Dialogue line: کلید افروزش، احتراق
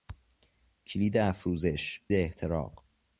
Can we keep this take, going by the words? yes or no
yes